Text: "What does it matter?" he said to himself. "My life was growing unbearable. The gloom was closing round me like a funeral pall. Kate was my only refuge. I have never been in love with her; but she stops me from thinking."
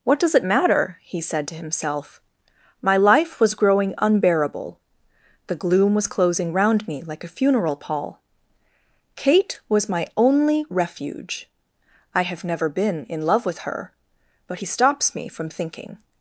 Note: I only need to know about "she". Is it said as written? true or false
false